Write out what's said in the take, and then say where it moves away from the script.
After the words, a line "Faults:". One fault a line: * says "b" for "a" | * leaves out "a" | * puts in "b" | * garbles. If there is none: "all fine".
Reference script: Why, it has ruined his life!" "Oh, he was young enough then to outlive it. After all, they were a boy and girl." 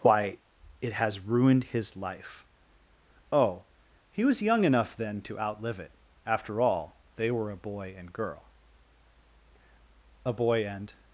Why, it has ruined his life!" "Oh, he was young enough then to outlive it. After all, they were a boy and girl." "A boy and
Faults:
* puts in "A boy and"